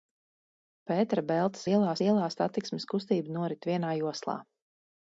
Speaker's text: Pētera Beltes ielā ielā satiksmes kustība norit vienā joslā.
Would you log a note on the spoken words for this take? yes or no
no